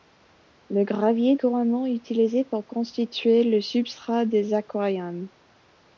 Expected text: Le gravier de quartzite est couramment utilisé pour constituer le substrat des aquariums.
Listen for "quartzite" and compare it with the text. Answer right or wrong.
wrong